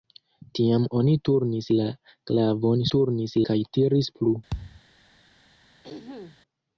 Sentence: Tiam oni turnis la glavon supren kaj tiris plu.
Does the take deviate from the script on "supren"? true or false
true